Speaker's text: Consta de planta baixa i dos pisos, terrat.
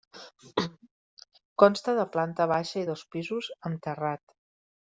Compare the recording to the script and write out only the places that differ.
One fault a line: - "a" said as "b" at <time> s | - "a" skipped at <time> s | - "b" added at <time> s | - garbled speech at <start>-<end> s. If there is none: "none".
- "amb" added at 3.7 s